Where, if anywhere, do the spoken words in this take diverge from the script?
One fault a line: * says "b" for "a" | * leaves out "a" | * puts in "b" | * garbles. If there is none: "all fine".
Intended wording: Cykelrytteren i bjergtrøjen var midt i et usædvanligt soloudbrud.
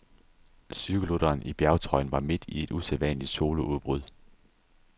all fine